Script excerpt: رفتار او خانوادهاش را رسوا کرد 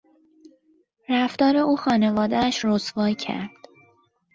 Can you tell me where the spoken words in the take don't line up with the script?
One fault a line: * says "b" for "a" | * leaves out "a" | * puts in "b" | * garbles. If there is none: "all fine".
* leaves out "را"